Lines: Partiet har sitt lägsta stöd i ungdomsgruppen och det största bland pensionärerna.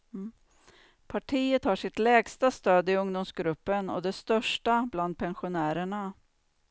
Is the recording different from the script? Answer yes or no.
no